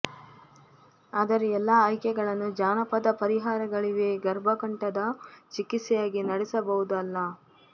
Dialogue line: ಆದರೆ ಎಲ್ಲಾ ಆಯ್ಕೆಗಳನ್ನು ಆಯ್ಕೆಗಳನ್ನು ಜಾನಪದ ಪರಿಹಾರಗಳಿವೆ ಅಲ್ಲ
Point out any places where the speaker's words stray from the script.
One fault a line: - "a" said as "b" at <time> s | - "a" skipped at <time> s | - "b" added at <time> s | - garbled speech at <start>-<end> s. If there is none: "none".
- "ಆಯ್ಕೆಗಳನ್ನು" skipped at 2.5 s
- "ಗರ್ಭಕಂಠದ ಚಿಕಿತ್ಸೆಯಾಗಿ ನಡೆಸಬಹುದು" added at 4.2 s